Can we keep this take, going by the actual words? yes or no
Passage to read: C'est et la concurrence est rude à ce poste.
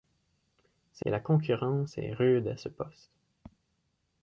yes